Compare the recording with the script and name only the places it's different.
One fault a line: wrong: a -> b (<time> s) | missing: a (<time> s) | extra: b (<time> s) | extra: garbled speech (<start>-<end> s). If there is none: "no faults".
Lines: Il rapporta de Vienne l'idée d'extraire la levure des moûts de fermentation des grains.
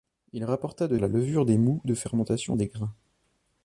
missing: Vienne l'idée d'extraire (0.9 s)